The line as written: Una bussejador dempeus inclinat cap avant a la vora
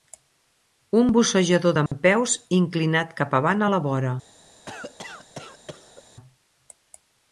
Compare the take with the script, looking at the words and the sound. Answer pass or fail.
fail